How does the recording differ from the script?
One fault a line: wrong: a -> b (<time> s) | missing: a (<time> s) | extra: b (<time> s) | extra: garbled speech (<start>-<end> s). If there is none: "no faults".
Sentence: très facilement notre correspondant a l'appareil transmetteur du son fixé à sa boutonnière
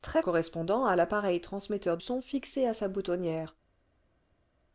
missing: facilement notre (0.2 s)
missing: du (2.0 s)